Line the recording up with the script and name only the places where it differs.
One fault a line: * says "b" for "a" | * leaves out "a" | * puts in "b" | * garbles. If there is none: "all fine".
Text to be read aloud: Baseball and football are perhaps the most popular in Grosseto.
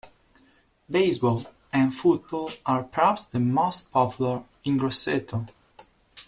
all fine